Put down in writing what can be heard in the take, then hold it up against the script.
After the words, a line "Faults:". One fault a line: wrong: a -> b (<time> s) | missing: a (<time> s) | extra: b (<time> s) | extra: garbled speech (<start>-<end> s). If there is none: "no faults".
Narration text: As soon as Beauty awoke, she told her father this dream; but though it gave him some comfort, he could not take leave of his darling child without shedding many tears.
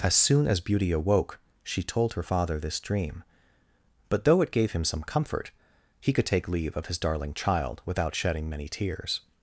As soon as Beauty awoke, she told her father this dream; but though it gave him some comfort, he could take leave of his darling child without shedding many tears.
Faults:
missing: not (6.2 s)